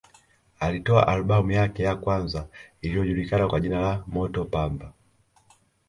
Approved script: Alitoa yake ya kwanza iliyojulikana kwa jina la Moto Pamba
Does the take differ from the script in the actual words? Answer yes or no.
yes